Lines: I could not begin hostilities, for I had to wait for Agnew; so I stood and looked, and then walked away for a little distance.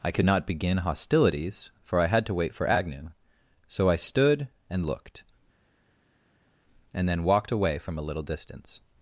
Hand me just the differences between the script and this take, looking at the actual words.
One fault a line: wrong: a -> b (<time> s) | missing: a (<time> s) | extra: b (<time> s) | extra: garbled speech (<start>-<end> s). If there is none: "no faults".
wrong: for -> from (7.8 s)